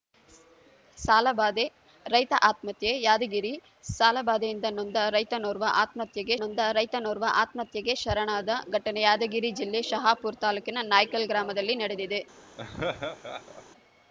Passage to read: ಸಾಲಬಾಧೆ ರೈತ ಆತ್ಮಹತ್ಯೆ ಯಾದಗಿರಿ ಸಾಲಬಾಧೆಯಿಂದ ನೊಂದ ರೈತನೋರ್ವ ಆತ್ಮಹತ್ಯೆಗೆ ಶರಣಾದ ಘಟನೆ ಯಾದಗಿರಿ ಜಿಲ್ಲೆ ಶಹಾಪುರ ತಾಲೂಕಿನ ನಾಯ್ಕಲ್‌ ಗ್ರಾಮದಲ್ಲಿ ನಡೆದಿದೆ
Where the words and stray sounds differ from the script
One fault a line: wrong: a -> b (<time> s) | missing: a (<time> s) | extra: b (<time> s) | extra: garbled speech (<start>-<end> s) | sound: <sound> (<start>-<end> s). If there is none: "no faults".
extra: ನೊಂದ ರೈತನೋರ್ವ ಆತ್ಮಹತ್ಯೆಗೆ (6.4 s)
sound: laugh (12.6-13.6 s)